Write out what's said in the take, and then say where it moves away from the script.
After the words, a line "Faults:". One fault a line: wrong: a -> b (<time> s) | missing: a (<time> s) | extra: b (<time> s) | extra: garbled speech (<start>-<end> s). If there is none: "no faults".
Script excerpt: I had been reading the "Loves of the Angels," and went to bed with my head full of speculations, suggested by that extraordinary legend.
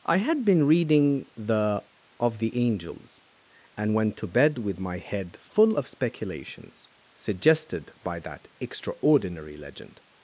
I had been reading the "of the Angels," and went to bed with my head full of speculations, suggested by that extraordinary legend.
Faults:
missing: Loves (1.8 s)